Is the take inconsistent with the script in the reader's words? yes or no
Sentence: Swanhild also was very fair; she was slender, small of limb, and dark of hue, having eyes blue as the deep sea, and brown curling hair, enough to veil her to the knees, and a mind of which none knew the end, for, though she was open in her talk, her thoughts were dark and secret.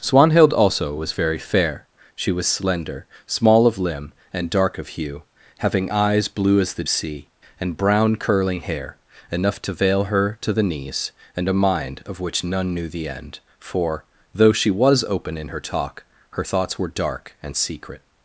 yes